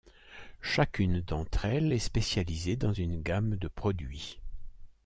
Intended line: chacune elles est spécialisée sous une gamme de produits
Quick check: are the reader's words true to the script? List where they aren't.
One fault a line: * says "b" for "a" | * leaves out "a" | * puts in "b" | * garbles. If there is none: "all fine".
* puts in "d'entre"
* says "dans" for "sous"